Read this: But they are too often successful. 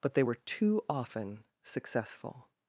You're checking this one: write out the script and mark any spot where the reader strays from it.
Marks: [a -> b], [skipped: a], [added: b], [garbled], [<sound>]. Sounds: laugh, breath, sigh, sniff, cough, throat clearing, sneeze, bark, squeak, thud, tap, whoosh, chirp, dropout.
But they [are -> were] too often successful.